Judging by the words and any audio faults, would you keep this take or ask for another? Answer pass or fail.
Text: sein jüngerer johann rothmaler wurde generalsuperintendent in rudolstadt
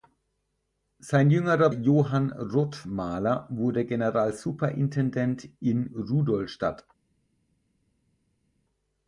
pass